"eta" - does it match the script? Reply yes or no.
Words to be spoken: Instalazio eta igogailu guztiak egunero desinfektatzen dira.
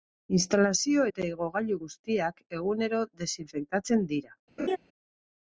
yes